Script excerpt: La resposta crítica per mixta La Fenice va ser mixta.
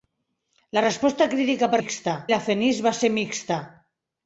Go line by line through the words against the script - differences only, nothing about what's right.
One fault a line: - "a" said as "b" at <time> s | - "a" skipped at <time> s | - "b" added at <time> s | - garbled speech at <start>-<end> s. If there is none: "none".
none